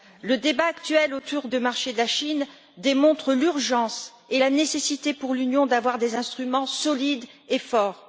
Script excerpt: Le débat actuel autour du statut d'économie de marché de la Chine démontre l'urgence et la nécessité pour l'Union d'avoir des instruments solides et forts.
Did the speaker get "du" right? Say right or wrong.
wrong